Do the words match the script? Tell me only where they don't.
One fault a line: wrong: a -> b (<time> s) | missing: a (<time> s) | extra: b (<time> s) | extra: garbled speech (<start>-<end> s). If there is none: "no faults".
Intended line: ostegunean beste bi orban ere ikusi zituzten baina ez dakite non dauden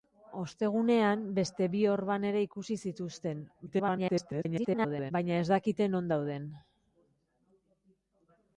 extra: garbled speech (3.7-5.1 s)